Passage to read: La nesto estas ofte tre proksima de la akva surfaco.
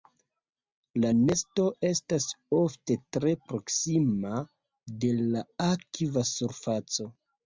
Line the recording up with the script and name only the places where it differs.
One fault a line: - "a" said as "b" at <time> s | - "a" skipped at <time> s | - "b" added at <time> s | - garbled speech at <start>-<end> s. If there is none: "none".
none